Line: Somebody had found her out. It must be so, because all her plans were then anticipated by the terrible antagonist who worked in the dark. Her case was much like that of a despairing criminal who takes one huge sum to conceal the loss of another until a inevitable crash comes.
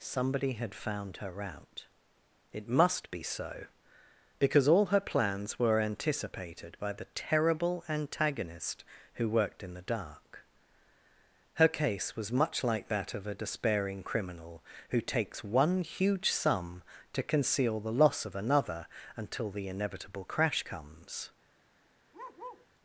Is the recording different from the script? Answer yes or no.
yes